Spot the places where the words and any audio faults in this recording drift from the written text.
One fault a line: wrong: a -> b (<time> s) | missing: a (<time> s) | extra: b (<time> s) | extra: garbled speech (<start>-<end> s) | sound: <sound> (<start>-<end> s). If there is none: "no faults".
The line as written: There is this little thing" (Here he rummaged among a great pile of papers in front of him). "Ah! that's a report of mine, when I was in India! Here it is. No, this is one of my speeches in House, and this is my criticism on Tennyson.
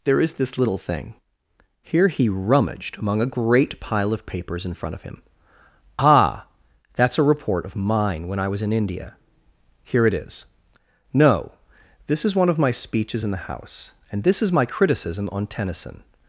extra: the (13.3 s)